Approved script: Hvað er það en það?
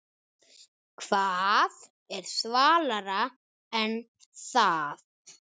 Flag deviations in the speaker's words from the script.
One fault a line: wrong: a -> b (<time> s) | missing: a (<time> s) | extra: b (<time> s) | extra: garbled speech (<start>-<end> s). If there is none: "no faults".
wrong: það -> svalara (2.3 s)